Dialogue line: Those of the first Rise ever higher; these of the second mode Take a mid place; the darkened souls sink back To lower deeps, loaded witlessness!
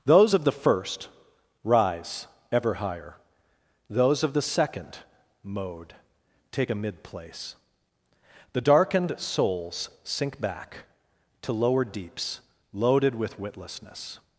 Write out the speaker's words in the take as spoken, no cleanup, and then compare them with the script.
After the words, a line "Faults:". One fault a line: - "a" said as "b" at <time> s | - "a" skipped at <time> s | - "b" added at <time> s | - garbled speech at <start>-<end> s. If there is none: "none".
Those of the first Rise ever higher; those of the second mode Take a mid place; the darkened souls sink back To lower deeps, loaded with witlessness!
Faults:
- "these" said as "those" at 3.9 s
- "with" added at 13.1 s